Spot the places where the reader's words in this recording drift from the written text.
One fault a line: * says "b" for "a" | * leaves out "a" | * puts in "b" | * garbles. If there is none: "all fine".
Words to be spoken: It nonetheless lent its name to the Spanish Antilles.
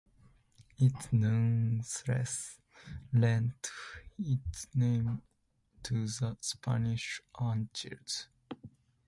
all fine